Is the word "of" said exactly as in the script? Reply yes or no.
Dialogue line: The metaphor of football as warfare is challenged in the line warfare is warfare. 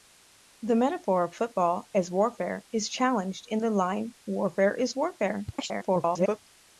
yes